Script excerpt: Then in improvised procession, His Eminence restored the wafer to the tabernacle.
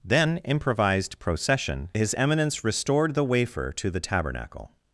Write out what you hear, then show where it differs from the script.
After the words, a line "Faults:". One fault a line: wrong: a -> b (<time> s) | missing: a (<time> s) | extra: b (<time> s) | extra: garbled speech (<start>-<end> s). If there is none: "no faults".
Then improvised procession, His Eminence restored the wafer to the tabernacle.
Faults:
missing: in (0.4 s)